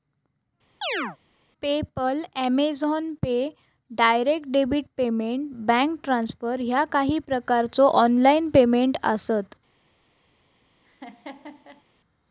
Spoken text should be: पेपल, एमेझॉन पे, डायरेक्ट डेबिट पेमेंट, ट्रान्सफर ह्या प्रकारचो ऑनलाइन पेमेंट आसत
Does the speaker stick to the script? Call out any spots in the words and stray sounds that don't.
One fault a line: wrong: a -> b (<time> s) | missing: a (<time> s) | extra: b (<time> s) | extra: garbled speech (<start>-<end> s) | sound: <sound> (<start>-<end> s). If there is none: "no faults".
sound: chirp (0.8-1.2 s)
extra: बँक (5.7 s)
extra: काही (6.9 s)
sound: laugh (10.8-11.8 s)